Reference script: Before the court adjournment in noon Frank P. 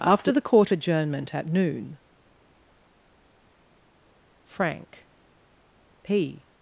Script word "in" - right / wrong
wrong